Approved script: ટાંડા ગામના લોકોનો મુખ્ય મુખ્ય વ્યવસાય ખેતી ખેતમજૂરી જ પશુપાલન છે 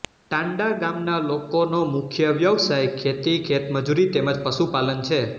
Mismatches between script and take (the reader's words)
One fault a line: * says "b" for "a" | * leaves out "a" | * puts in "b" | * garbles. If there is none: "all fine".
* leaves out "મુખ્ય"
* puts in "તેમ"